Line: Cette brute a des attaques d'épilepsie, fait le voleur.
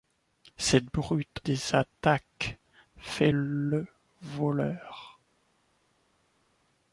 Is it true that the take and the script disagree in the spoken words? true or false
true